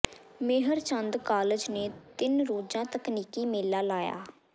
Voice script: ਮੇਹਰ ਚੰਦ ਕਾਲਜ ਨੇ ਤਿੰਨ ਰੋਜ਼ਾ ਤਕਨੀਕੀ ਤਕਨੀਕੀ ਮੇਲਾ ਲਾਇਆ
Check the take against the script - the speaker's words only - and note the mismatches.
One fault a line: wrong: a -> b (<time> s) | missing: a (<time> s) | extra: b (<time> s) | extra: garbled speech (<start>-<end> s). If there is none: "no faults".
missing: ਤਕਨੀਕੀ (3.5 s)